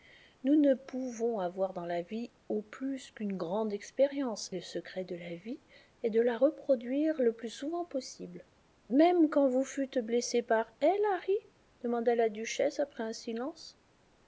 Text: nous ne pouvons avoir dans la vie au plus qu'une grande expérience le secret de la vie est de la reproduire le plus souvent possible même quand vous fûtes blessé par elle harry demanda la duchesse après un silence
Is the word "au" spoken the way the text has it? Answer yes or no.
yes